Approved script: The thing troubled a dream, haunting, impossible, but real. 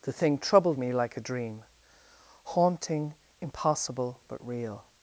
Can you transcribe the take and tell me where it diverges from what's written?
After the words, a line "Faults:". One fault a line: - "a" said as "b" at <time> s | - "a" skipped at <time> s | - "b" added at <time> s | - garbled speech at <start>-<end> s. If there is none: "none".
The thing troubled me like a dream, haunting, impossible, but real.
Faults:
- "me like" added at 0.8 s